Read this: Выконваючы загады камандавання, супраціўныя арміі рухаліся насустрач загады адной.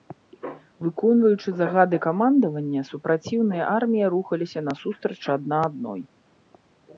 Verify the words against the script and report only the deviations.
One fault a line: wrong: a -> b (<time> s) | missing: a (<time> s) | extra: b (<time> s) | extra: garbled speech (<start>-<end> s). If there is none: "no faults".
wrong: загады -> адна (5.4 s)